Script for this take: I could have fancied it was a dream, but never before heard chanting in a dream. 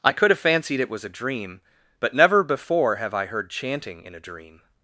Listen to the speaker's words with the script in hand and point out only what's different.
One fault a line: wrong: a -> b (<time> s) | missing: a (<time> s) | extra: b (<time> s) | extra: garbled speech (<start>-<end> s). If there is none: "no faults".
extra: have I (3.0 s)